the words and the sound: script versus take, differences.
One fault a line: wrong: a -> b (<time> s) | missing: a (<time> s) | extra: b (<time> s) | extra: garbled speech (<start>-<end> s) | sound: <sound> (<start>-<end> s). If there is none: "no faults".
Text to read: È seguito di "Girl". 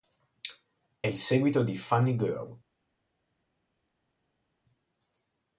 extra: il (1.0 s)
extra: Funny (1.7 s)